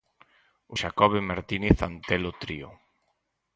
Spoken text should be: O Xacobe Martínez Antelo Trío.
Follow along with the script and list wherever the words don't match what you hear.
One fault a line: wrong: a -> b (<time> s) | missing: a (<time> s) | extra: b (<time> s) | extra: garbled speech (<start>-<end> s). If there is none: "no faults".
no faults